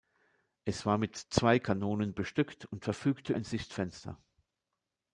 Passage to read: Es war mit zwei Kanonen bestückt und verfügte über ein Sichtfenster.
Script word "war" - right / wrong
right